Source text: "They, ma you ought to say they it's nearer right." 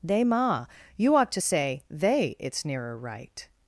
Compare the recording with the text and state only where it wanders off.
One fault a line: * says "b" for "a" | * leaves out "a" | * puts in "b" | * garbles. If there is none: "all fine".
all fine